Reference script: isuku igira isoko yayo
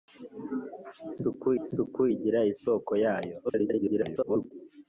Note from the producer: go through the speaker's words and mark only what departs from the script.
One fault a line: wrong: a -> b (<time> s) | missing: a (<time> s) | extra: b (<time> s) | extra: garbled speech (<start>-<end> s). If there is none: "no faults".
extra: isuku (1.6 s)
extra: garbled speech (3.4-4.5 s)